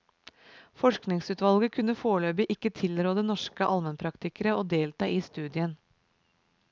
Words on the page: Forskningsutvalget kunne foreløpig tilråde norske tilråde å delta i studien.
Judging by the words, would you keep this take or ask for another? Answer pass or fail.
fail